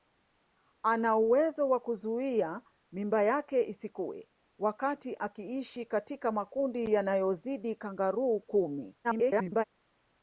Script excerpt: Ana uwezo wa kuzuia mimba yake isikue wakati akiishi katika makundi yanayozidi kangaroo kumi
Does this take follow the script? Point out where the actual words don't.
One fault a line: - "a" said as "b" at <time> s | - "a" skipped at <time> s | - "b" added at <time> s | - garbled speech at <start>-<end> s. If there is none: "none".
- garbled speech at 9.0-9.6 s